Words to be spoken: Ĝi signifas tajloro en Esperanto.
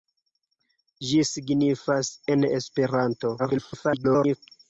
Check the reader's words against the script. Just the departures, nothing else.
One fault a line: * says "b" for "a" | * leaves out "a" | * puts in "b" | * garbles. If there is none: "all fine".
* leaves out "tajloro"
* garbles